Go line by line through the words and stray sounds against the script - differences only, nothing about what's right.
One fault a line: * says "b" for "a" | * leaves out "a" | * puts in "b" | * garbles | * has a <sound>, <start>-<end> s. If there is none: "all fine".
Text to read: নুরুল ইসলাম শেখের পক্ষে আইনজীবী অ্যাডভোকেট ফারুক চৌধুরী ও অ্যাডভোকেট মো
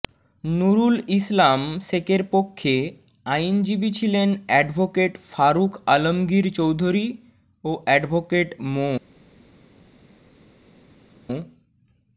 * puts in "ছিলেন"
* puts in "আলমগীর"